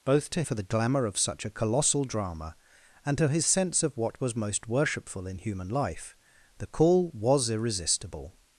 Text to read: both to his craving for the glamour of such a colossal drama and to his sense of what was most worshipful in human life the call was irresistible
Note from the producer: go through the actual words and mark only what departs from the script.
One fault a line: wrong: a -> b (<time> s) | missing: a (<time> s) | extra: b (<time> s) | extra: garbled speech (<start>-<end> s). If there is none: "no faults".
missing: his craving (0.4 s)